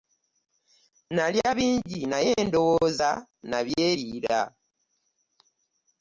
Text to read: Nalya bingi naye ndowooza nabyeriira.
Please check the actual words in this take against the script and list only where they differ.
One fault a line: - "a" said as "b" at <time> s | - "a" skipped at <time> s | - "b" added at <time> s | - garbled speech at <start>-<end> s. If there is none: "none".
none